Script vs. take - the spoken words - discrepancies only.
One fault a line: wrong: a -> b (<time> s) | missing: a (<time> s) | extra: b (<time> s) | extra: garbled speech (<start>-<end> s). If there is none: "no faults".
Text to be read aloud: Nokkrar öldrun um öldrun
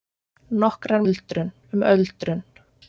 no faults